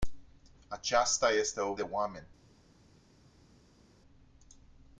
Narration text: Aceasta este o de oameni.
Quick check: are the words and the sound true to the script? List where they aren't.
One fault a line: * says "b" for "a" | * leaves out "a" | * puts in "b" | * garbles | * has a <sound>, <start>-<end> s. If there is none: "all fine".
all fine